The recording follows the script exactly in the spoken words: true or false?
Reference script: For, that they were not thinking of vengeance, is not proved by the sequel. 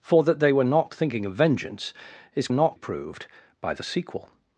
true